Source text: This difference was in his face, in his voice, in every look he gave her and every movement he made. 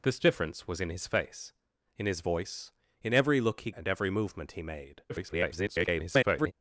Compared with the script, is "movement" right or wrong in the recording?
right